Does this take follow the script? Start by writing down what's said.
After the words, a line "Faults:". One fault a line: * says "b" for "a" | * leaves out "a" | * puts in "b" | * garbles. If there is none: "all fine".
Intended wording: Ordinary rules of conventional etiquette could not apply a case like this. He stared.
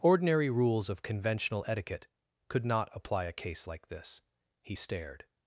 Ordinary rules of conventional etiquette could not apply a case like this. He stared.
Faults:
all fine